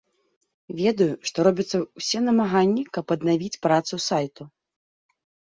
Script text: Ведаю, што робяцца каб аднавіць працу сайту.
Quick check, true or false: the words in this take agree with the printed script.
false